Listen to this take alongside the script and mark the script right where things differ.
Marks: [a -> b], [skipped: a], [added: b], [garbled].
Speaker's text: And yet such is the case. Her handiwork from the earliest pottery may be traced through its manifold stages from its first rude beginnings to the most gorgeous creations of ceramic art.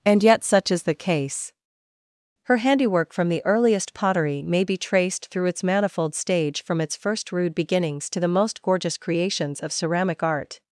And yet such is the case. Her handiwork from the earliest pottery may be traced through its manifold [stages -> stage] from its first rude beginnings to the most gorgeous creations of ceramic art.